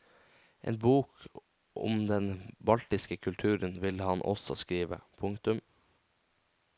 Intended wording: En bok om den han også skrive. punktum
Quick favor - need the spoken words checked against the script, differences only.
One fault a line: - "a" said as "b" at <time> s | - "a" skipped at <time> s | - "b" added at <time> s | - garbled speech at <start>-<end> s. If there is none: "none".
- "baltiske kulturen vil" added at 2.6 s